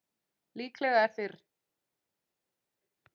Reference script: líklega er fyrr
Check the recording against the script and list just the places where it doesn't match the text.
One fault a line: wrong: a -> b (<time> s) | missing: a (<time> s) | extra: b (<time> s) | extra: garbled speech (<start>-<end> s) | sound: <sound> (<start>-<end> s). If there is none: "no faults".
no faults